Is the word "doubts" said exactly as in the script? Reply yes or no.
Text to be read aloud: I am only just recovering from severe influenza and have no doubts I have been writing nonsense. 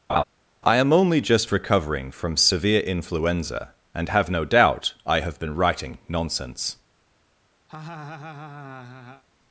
no